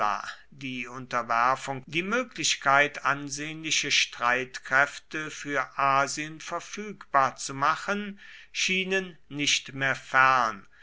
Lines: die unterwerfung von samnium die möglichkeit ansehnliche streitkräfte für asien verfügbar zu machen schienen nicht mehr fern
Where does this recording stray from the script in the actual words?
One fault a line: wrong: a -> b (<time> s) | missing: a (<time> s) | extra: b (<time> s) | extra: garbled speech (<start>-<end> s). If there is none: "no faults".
missing: von samnium (1.9 s)